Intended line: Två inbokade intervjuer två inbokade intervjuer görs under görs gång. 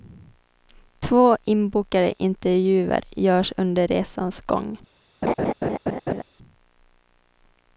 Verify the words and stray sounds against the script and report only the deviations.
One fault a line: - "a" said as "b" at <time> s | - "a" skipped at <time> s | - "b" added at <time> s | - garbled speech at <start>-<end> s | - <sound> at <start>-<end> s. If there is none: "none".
- "två inbokade intervjuer" skipped at 3.0 s
- "görs" said as "resans" at 3.9 s
- laugh at 5.2-6.2 s